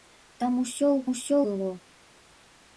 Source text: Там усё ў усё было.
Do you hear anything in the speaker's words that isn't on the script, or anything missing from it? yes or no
no